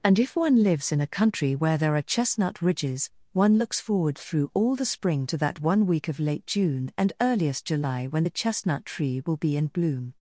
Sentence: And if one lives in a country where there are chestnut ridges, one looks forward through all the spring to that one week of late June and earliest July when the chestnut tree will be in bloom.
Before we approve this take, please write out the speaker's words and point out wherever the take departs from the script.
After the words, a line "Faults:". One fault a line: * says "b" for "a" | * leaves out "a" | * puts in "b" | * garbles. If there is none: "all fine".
And if one lives in a country where there are chestnut ridges, one looks forward through all the spring to that one week of late June and earliest July when the chestnut tree will be in bloom.
Faults:
all fine